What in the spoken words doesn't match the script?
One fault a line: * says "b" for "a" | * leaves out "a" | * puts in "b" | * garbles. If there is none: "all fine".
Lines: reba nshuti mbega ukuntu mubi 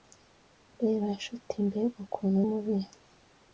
all fine